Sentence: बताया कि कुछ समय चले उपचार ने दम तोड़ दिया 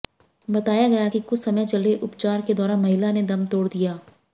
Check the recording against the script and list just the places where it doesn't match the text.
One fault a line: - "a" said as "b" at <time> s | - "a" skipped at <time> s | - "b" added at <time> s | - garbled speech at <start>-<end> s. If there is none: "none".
- "गया" added at 0.9 s
- "के दौरान महिला" added at 2.4 s